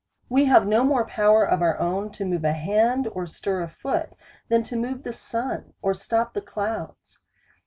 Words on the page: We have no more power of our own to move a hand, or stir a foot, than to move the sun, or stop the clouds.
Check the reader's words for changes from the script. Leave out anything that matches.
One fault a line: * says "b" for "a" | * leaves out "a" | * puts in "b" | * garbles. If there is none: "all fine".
all fine